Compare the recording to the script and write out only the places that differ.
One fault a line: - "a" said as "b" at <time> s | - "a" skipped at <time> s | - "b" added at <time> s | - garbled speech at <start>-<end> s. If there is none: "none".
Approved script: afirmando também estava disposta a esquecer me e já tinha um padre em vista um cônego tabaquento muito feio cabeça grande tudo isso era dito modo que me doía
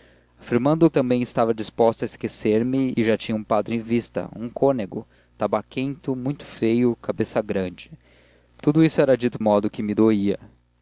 none